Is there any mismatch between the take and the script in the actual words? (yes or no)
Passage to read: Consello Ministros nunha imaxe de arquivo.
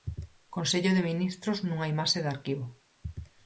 yes